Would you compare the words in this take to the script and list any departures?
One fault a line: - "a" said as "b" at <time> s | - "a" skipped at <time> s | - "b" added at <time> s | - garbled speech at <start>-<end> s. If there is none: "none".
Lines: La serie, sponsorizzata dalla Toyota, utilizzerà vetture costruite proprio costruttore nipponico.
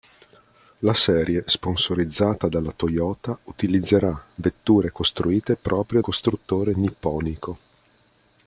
none